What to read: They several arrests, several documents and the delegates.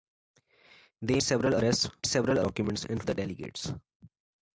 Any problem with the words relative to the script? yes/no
no